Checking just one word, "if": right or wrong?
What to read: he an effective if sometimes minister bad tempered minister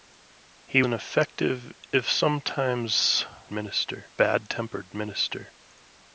right